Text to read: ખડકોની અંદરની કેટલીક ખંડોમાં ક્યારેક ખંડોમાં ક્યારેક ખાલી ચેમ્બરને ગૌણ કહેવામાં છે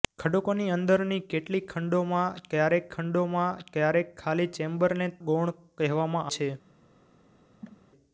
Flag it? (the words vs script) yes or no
no